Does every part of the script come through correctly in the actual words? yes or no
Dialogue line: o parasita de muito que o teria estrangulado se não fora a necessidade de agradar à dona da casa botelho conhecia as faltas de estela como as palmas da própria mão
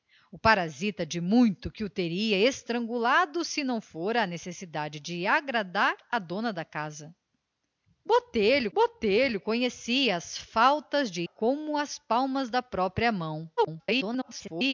no